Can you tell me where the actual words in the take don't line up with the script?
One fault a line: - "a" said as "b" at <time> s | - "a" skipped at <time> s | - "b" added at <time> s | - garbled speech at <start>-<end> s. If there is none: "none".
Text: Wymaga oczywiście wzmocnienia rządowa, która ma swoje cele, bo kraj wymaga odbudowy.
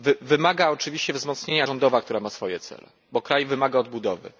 none